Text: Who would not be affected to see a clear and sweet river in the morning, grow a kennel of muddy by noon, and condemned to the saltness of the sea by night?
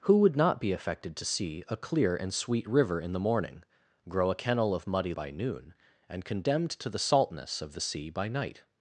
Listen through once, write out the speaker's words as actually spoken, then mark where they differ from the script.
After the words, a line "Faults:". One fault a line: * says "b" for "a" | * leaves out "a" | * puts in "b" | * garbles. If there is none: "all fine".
Who would not be affected to see a clear and sweet river in the morning, grow a kennel of muddy by noon, and condemned to the saltness of the sea by night?
Faults:
all fine